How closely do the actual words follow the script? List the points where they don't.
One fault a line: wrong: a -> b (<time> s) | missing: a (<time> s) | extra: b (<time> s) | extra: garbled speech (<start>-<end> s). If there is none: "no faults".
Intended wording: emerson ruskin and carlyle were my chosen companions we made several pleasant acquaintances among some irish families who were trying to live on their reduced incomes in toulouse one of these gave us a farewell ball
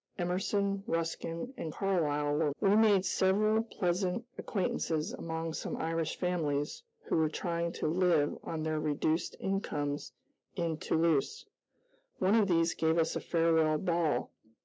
missing: my chosen companions (2.5 s)